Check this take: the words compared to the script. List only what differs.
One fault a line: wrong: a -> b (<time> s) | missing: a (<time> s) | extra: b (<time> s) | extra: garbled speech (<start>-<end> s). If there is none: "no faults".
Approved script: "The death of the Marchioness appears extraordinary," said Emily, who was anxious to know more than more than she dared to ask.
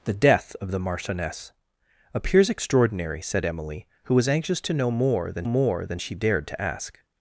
no faults